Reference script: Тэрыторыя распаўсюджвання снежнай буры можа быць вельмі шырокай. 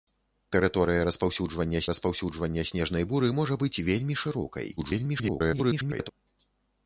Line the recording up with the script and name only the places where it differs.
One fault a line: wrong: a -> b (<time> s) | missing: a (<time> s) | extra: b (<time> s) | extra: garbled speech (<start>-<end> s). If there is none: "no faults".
extra: распаўсюджвання (1.9 s)
extra: garbled speech (4.8-6.1 s)